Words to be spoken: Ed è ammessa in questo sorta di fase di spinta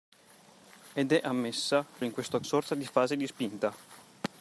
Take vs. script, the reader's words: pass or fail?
pass